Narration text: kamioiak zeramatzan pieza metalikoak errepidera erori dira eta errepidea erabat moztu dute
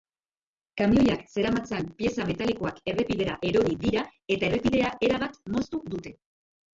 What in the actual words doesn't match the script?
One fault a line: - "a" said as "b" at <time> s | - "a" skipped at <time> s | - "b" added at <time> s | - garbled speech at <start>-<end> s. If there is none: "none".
none